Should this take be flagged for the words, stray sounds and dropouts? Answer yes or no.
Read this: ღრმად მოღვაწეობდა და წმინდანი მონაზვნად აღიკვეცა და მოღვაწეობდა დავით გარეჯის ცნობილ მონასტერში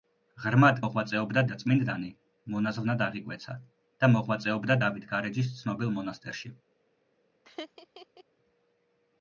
yes